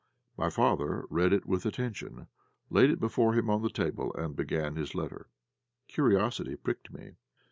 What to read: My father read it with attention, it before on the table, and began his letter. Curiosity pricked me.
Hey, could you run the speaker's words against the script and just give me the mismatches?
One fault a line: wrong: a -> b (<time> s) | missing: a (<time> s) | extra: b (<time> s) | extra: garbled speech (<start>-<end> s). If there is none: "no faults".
extra: laid (2.7 s)
extra: him (3.4 s)